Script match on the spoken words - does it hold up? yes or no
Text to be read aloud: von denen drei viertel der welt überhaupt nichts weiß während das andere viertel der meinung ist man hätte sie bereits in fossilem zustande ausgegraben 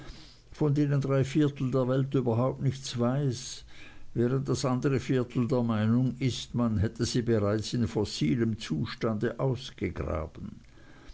yes